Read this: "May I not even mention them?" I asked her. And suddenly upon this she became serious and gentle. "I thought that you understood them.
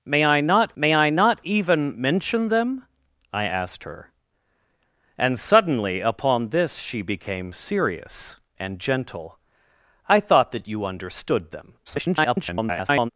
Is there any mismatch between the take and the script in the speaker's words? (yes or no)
yes